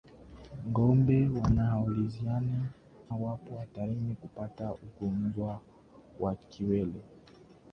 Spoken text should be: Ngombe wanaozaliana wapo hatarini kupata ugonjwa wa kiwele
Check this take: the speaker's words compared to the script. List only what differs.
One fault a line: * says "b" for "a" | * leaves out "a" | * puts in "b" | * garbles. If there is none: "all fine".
all fine